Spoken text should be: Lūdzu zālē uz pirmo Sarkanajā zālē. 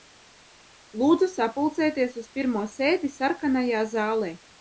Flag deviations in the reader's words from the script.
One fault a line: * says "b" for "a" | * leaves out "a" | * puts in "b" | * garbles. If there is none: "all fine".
* says "sapulcēties" for "zālē"
* puts in "sēdi"